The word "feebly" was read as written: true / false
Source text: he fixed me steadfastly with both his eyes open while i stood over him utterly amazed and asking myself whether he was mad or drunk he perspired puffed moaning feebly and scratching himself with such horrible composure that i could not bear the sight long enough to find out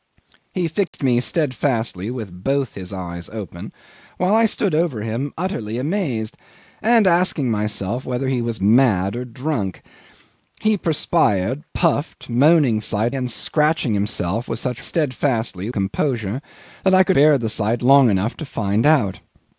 false